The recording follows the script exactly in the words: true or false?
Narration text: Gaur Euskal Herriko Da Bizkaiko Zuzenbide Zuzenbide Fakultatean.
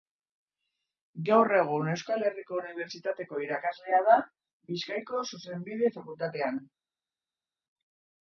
false